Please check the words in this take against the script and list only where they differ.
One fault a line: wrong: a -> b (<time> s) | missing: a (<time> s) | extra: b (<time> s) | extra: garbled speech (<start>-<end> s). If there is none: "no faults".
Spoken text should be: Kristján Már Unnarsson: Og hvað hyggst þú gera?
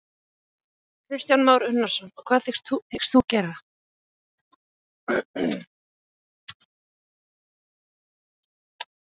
no faults